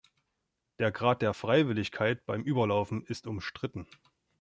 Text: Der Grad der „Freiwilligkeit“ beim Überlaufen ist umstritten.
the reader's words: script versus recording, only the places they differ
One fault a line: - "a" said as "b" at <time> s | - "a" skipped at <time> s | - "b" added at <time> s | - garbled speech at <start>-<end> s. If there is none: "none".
none